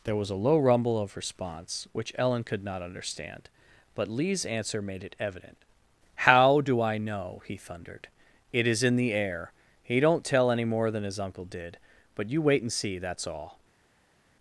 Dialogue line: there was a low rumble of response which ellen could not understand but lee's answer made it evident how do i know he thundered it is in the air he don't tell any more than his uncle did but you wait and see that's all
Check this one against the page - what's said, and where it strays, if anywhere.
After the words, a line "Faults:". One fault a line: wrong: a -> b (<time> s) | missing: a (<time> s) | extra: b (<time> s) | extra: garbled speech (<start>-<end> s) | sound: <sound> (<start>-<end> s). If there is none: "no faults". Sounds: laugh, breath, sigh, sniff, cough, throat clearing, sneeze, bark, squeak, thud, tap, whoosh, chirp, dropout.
there was a low rumble of response which ellen could not understand but lee's answer made it evident how do i know he thundered it is in the air he don't tell any more than his uncle did but you wait and see that's all
Faults:
no faults